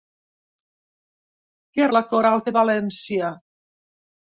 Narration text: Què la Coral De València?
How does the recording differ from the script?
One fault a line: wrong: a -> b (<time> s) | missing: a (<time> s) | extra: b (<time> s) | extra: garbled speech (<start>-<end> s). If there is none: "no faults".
no faults